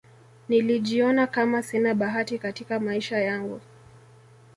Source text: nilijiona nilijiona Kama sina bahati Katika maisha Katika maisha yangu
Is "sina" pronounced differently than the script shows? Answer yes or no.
no